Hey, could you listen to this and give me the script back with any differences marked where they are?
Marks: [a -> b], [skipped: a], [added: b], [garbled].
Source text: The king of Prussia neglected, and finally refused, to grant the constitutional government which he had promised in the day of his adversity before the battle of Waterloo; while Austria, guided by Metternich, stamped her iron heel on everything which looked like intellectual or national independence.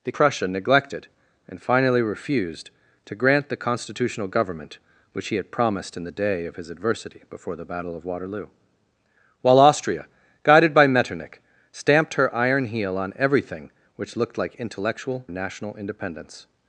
The [skipped: king of] Prussia neglected, and finally refused, to grant the constitutional government which he had promised in the day of his adversity before the battle of Waterloo; while Austria, guided by Metternich, stamped her iron heel on everything which looked like intellectual [skipped: or] national independence.